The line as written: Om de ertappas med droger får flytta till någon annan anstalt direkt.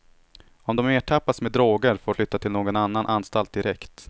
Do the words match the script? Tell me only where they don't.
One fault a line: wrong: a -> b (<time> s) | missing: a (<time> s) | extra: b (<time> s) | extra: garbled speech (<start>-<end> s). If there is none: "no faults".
no faults